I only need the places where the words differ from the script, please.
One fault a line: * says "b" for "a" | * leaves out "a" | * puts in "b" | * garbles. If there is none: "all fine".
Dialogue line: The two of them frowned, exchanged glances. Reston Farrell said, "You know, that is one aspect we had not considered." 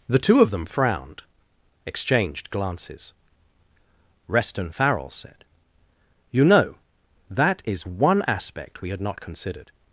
all fine